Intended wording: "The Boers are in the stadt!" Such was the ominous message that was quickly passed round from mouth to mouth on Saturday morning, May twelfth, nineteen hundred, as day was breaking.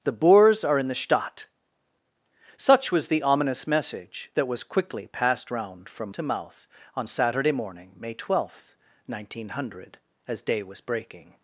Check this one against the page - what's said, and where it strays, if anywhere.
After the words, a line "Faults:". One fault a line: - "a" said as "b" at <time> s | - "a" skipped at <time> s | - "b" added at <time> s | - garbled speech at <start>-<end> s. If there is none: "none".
"The Boers are in the stadt!" Such was the ominous message that was quickly passed round from to mouth on Saturday morning, May twelfth, nineteen hundred, as day was breaking.
Faults:
- "mouth" skipped at 6.2 s